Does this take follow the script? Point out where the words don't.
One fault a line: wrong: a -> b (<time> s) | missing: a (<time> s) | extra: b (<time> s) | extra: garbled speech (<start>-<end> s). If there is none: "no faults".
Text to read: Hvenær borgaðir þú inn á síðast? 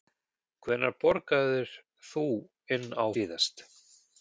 no faults